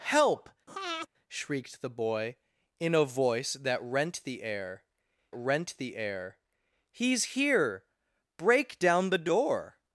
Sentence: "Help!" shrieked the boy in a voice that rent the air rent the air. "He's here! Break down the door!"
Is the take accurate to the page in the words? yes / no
yes